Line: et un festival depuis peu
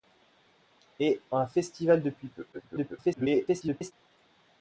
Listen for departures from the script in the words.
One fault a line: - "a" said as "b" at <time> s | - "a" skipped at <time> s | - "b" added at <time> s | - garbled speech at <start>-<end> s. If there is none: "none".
- garbled speech at 2.5-3.9 s